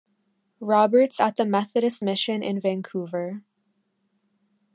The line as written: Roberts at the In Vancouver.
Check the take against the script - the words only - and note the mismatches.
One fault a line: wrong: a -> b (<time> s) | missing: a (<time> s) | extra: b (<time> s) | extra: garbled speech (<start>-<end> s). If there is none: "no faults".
extra: Methodist mission (1.4 s)